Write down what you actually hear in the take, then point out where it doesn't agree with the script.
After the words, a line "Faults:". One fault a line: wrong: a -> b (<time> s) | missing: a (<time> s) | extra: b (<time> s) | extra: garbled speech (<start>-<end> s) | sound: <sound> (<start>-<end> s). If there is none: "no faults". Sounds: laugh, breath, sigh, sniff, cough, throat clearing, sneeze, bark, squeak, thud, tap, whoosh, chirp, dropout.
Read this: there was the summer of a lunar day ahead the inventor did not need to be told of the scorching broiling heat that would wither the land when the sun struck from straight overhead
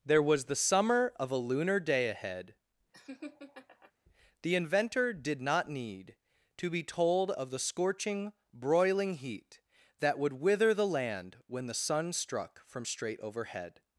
there was the summer of a lunar day ahead the inventor did not need to be told of the scorching broiling heat that would wither the land when the sun struck from straight overhead
Faults:
sound: laugh (2.9-3.9 s)